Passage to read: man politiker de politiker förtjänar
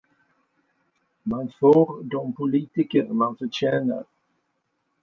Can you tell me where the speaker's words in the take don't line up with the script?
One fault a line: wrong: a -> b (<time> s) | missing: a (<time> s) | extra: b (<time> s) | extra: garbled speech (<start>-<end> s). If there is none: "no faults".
wrong: politiker -> får (1.5 s)
extra: man (3.1 s)